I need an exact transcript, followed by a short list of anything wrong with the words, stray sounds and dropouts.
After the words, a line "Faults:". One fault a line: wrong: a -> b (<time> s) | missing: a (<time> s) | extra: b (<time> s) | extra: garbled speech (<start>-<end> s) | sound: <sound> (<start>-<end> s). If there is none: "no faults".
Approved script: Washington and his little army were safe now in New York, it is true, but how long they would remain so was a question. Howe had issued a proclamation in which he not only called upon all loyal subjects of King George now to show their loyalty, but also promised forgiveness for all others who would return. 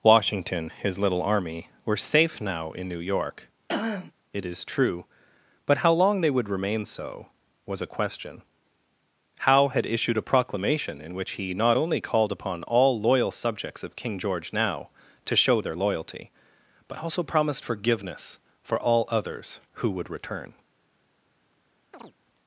Washington his little army were safe now in New York, it is true, but how long they would remain so was a question. Howe had issued a proclamation in which he not only called upon all loyal subjects of King George now to show their loyalty, but also promised forgiveness for all others who would return.
Faults:
missing: and (0.7 s)
sound: throat clearing (3.7-4.1 s)
sound: chirp (21.9-22.1 s)